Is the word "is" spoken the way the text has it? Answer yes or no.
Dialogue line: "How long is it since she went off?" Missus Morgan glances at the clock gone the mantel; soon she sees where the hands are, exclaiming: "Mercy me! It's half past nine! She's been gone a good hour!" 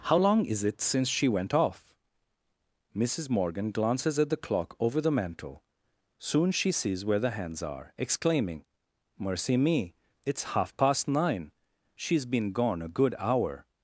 yes